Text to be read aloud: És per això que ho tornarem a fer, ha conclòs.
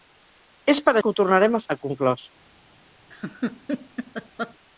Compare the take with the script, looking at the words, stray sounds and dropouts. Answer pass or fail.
fail